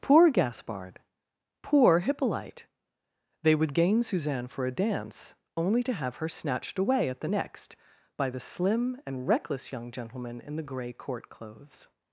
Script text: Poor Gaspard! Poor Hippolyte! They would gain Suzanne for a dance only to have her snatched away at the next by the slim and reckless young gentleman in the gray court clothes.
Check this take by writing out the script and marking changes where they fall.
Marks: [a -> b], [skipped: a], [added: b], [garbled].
Poor Gaspard! Poor Hippolyte! They would gain Suzanne for a dance only to have her snatched away at the next by the slim and reckless young gentleman in the gray court clothes.